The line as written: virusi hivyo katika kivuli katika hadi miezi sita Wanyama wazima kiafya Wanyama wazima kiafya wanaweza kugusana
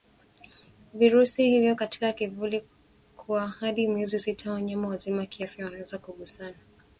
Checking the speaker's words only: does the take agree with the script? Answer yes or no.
no